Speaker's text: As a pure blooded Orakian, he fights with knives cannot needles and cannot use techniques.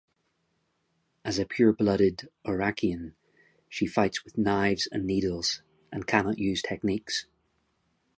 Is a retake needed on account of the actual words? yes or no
yes